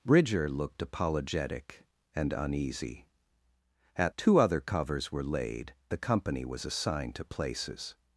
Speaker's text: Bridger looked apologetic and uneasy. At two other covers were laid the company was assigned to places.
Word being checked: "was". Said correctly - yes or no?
yes